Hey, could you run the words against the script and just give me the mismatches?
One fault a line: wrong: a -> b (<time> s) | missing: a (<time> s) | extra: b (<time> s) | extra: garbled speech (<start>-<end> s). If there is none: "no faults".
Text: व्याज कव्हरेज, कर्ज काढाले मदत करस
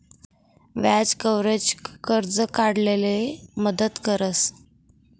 no faults